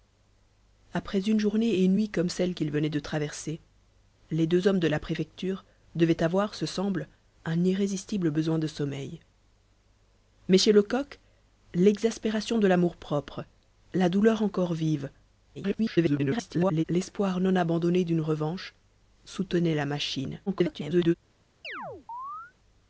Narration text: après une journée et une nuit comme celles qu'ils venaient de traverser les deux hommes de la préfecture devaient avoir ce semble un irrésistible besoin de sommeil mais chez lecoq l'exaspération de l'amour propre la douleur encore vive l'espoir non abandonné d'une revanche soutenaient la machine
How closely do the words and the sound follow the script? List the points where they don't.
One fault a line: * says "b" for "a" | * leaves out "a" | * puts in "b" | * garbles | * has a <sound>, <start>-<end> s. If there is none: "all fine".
* garbles
* garbles
* has a chirp, 21.6-22.5 s